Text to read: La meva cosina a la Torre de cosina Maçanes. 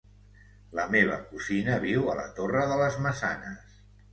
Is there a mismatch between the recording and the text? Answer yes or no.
yes